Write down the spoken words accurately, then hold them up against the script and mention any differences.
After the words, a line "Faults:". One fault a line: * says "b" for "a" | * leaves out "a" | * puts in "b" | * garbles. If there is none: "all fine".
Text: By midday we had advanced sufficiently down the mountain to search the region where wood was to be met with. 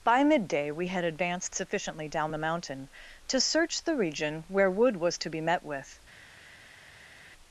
By midday we had advanced sufficiently down the mountain to search the region where wood was to be met with.
Faults:
all fine